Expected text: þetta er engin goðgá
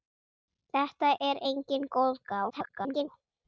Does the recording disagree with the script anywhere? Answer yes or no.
yes